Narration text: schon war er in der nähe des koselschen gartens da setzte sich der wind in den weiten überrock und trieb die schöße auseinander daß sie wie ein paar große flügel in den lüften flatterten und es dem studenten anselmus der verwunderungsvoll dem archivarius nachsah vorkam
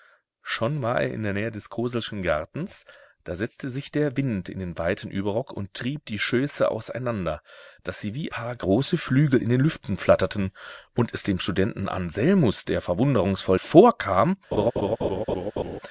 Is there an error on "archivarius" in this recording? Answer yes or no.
yes